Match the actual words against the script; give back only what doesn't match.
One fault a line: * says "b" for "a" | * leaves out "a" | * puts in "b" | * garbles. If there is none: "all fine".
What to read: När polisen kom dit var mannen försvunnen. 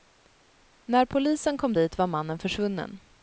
all fine